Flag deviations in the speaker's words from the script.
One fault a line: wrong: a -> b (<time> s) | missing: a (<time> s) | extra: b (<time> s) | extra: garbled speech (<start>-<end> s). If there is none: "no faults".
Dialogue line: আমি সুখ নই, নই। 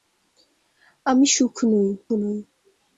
no faults